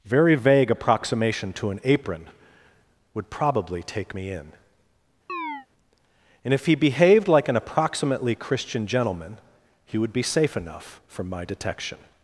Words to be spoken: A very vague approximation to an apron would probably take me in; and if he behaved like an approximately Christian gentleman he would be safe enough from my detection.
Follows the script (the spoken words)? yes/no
no